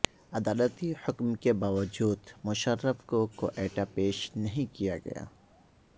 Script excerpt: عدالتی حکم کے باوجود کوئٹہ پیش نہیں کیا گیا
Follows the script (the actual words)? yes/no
no